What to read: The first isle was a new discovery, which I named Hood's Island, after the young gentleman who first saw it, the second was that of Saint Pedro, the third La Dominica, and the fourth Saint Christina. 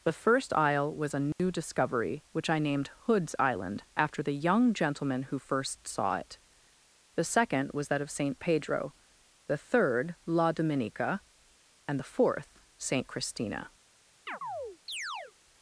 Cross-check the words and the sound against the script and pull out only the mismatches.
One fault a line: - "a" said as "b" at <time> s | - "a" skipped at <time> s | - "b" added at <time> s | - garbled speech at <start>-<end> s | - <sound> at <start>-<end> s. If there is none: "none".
- dropout at 1.3-1.4 s
- chirp at 14.3-15.3 s